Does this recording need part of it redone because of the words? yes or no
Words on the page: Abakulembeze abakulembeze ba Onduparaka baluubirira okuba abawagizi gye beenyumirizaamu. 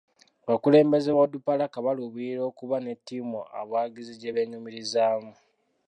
yes